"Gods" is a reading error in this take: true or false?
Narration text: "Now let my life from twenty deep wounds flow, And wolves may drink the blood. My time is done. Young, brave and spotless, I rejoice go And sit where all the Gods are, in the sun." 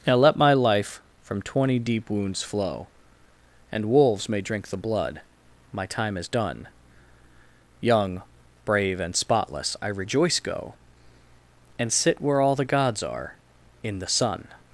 false